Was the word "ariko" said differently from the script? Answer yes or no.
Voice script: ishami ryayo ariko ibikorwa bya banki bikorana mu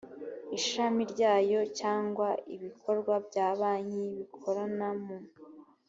yes